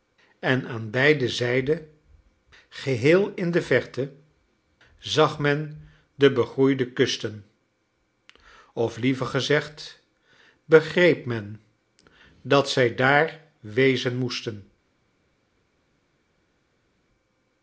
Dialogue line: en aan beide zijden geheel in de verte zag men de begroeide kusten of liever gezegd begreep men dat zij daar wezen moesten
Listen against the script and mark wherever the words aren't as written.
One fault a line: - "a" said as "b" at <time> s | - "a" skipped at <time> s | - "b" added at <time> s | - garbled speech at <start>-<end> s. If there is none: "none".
none